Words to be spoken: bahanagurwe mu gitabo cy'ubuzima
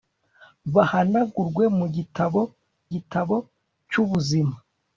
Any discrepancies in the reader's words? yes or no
yes